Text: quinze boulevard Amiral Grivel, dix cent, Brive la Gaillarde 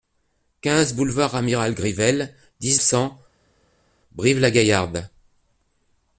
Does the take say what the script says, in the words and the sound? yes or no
yes